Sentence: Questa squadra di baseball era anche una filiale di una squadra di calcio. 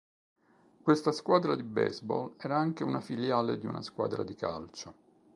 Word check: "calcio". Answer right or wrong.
right